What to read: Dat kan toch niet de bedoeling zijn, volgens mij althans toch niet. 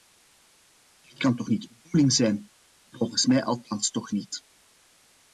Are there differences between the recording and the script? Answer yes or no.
no